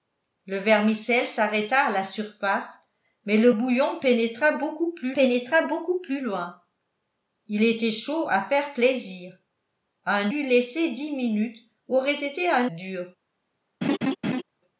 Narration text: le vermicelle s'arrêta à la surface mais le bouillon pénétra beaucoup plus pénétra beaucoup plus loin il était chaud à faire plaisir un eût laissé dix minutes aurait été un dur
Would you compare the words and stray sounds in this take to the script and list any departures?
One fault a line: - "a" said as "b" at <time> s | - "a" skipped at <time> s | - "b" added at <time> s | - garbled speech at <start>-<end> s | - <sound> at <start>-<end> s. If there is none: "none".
- laugh at 13.8-14.4 s